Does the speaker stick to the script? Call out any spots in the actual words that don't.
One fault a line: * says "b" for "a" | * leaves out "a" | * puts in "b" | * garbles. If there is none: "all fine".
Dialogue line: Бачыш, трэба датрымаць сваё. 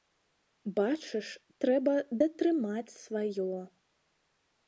all fine